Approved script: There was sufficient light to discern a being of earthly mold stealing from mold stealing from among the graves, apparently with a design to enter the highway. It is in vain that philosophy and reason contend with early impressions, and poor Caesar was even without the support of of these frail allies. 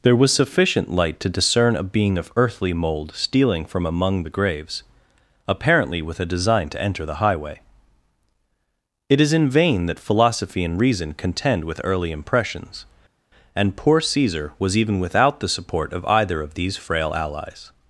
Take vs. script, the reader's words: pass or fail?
fail